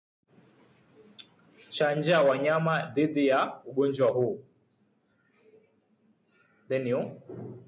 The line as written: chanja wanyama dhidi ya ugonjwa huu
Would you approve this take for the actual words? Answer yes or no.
yes